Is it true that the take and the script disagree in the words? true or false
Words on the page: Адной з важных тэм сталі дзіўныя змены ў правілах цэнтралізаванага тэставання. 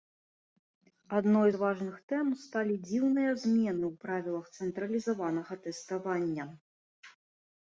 false